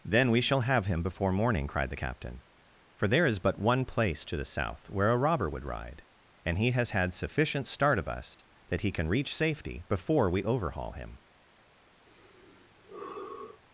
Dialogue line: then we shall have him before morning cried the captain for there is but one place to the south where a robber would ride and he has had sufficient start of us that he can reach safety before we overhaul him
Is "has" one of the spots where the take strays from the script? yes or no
no